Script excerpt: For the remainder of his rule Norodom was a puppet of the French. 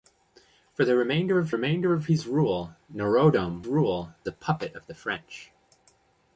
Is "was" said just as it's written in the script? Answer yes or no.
no